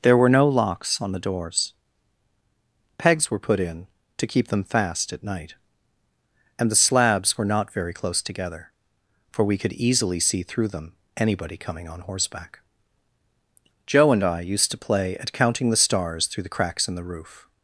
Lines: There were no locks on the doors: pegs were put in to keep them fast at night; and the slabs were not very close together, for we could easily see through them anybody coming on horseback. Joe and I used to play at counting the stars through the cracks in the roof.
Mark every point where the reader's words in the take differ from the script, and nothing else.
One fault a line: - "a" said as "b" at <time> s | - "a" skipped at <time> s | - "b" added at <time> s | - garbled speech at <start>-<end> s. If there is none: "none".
none